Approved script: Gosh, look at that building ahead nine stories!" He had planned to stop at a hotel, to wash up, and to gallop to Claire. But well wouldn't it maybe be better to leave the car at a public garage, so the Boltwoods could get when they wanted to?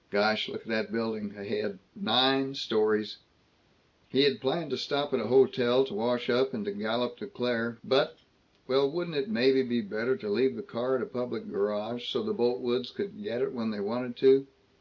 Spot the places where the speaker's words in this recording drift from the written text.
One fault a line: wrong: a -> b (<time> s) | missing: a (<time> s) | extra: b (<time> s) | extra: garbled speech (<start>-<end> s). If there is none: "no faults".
extra: it (13.4 s)